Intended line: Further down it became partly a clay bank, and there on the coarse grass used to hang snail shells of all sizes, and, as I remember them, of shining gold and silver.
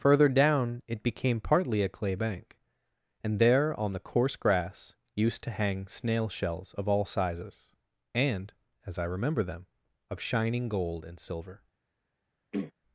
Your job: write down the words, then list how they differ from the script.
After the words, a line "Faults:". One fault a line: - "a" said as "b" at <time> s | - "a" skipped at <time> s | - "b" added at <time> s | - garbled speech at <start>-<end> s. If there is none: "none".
Further down it became partly a clay bank, and there on the coarse grass used to hang snail shells of all sizes, and, as I remember them, of shining gold and silver.
Faults:
none